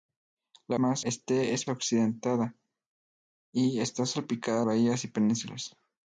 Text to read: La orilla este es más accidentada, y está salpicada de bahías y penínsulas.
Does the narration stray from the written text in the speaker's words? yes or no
yes